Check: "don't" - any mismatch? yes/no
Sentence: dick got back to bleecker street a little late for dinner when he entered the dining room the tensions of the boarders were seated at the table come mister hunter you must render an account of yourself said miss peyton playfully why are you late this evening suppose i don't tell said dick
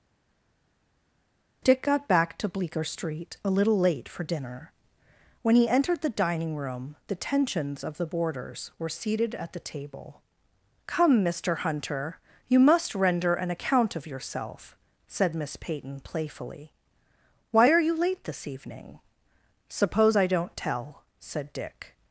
no